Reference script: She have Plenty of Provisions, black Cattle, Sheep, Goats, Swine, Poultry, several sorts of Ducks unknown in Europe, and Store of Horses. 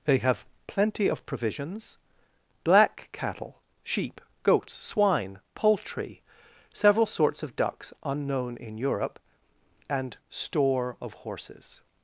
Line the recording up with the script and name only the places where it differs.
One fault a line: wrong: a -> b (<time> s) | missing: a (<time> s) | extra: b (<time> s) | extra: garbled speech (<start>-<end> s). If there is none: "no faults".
wrong: She -> They (0.1 s)